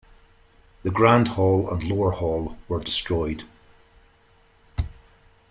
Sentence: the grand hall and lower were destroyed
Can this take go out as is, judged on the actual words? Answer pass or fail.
fail